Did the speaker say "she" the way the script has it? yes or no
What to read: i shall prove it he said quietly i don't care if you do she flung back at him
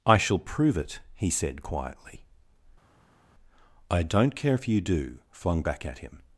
no